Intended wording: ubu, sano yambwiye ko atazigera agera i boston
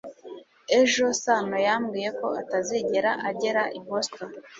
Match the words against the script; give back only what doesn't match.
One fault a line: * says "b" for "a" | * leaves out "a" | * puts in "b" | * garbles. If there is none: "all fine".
* says "ejo" for "ubu"